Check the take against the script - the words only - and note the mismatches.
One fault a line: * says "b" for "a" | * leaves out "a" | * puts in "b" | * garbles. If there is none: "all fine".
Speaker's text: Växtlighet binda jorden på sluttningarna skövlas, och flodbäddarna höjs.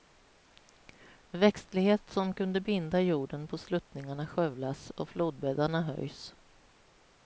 * puts in "som kunde"